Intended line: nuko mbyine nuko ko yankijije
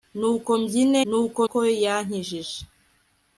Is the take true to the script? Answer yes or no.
yes